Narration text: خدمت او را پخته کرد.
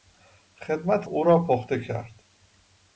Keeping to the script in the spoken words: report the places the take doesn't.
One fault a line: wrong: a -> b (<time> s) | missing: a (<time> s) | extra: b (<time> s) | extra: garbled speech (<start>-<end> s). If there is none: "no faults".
no faults